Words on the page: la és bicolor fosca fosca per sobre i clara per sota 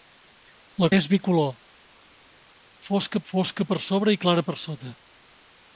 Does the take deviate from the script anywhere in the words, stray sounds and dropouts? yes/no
no